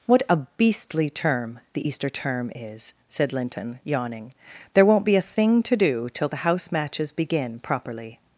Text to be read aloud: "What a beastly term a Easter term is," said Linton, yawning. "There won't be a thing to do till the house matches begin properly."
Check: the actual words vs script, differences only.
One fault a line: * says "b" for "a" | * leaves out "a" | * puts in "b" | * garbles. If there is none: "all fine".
* says "the" for "a"